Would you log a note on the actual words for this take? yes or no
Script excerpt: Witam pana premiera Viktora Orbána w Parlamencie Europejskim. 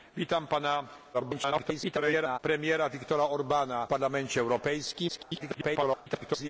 yes